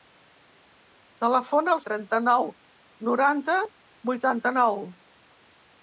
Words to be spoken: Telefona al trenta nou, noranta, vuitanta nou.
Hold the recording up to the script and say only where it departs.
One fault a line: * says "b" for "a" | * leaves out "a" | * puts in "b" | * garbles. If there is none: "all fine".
all fine